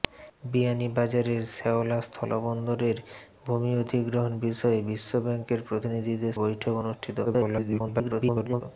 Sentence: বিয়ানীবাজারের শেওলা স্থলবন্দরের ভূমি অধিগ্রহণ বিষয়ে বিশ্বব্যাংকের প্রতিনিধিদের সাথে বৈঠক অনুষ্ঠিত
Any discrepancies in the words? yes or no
yes